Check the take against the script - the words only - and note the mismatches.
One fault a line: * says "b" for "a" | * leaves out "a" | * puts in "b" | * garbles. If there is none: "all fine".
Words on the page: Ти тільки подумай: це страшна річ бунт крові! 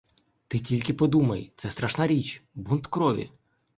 all fine